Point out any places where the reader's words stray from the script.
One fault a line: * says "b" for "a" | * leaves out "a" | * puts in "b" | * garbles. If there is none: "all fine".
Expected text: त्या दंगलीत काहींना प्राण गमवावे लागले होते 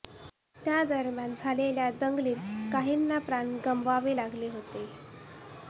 * puts in "दरम्यान झालेल्या"